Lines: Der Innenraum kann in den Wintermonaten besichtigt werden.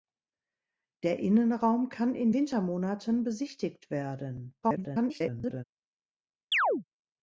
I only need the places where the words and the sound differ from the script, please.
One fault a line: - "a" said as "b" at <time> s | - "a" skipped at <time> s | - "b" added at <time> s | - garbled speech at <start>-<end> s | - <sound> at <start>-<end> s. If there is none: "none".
- "den" skipped at 2.3 s
- garbled speech at 4.6-5.6 s
- chirp at 6.5-6.8 s